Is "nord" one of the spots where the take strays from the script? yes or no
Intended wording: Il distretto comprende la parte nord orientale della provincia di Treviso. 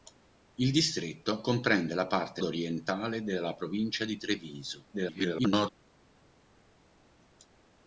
yes